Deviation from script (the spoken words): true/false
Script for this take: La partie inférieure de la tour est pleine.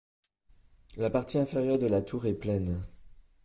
false